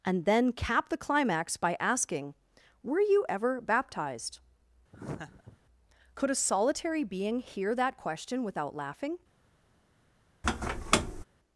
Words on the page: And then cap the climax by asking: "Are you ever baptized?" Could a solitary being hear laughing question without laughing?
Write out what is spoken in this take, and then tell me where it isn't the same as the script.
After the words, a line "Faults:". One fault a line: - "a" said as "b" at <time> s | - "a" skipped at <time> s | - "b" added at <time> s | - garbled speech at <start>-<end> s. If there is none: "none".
And then cap the climax by asking: "Were you ever baptized?" Could a solitary being hear that question without laughing?
Faults:
- "Are" said as "Were" at 2.8 s
- "laughing" said as "that" at 7.7 s